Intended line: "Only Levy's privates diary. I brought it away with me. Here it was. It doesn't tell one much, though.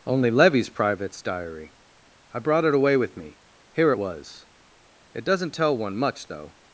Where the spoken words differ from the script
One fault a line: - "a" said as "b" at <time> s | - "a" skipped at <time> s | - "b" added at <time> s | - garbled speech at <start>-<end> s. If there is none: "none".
none